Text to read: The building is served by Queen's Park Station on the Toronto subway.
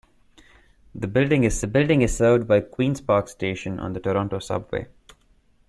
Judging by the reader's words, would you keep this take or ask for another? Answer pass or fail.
fail